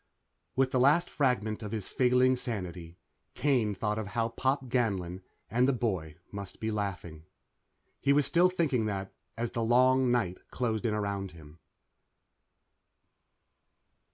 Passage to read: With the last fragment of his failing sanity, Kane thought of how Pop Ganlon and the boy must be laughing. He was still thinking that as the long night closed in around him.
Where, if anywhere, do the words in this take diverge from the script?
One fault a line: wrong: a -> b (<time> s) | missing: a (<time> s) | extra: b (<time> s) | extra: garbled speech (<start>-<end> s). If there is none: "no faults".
no faults